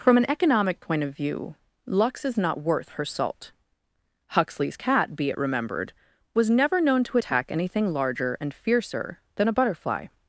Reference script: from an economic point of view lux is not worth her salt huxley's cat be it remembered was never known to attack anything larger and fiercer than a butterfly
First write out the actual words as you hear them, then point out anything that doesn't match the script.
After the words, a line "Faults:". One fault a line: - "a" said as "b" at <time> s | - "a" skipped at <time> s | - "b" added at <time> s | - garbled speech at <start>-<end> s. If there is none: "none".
from an economic point of view lux is not worth her salt huxley's cat be it remembered was never known to attack anything larger and fiercer than a butterfly
Faults:
none